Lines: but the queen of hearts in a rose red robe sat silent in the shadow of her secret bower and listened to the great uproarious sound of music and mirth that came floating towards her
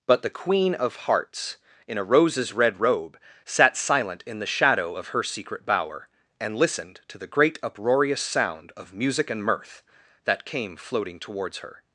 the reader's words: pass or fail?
fail